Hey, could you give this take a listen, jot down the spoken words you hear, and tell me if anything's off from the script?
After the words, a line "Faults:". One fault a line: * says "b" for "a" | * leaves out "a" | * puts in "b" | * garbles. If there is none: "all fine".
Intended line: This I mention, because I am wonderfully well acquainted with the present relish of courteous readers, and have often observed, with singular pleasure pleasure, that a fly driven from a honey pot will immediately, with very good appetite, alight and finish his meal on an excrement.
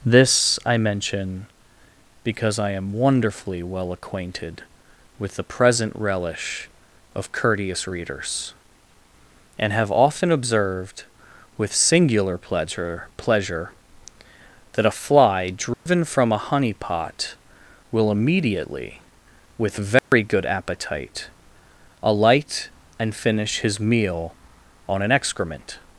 This I mention, because I am wonderfully well acquainted with the present relish of courteous readers, and have often observed, with singular pleasure pleasure, that a fly driven from a honey pot will immediately, with very good appetite, alight and finish his meal on an excrement.
Faults:
all fine